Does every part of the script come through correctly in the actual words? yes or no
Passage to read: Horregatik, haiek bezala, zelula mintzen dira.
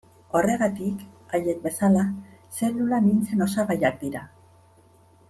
no